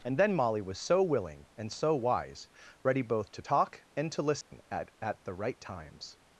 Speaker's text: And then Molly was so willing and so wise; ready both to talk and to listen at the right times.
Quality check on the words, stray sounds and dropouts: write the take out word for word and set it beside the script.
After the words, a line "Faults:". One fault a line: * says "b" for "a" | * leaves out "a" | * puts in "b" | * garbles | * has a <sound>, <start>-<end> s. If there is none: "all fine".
And then Molly was so willing and so wise; ready both to talk and to listen at at the right times.
Faults:
* has a dropout, 4.4-4.5 s
* puts in "at"